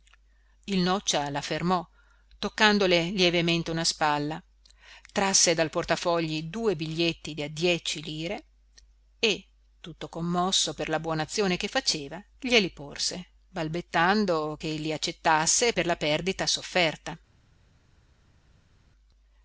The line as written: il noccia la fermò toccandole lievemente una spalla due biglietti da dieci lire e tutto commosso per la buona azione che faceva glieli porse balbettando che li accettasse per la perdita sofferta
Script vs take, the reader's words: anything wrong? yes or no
yes